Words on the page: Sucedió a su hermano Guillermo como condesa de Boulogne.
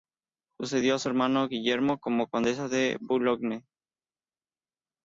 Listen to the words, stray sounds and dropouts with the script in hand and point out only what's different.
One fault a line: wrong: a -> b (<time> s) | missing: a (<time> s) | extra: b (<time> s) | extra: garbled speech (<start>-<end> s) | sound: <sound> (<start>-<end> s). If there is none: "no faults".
no faults